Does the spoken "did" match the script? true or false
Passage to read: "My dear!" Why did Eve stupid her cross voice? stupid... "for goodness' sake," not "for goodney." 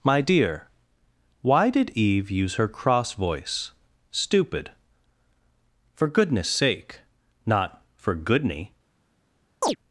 true